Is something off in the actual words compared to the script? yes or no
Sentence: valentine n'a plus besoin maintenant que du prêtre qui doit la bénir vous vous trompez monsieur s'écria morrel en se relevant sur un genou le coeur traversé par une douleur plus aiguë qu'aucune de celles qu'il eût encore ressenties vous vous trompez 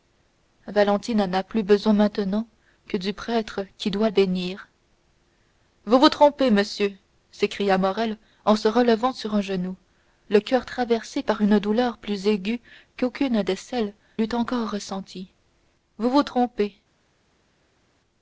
yes